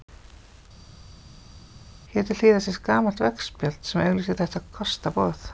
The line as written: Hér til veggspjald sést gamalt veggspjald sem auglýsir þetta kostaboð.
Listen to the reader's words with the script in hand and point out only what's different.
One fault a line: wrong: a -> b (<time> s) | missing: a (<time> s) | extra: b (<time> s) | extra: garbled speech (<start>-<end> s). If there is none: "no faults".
wrong: veggspjald -> hliðar (2.4 s)